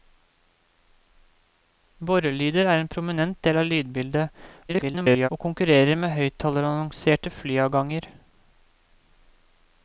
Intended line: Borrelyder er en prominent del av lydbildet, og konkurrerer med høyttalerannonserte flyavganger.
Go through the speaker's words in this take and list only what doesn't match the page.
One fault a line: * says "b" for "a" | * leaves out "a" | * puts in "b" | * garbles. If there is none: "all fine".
* garbles